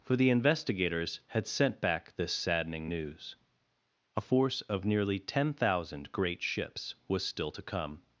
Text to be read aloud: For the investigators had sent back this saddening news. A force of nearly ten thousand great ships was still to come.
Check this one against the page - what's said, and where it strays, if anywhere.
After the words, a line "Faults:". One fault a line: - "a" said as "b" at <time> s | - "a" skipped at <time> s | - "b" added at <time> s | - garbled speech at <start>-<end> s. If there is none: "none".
For the investigators had sent back this saddening news. A force of nearly ten thousand great ships was still to come.
Faults:
none